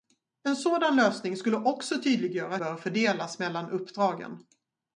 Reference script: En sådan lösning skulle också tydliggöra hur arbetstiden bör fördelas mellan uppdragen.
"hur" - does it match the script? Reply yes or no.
no